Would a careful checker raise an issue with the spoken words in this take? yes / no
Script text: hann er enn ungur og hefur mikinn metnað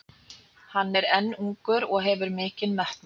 no